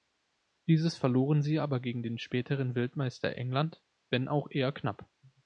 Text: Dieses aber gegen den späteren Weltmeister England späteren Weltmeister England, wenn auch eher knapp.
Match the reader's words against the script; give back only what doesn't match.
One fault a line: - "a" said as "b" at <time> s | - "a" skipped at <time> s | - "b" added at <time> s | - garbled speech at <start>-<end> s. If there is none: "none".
- "verloren sie" added at 1.0 s
- "späteren Weltmeister England" skipped at 3.8 s